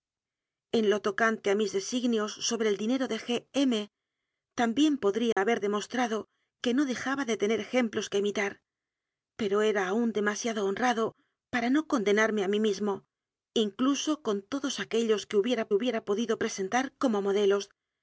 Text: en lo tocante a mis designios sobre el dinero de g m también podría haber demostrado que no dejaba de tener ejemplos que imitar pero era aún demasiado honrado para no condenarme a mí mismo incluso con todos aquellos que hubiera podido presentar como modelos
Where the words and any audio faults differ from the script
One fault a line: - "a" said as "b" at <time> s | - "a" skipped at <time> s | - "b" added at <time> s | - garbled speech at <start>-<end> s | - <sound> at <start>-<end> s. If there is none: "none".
- dropout at 5.3-5.4 s
- "hubiera" added at 15.7 s